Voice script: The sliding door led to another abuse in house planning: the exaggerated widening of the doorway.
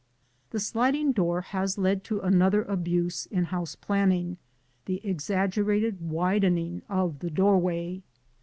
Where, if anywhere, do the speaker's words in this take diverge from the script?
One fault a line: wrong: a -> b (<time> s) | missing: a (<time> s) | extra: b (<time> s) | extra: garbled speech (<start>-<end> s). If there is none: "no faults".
extra: has (1.4 s)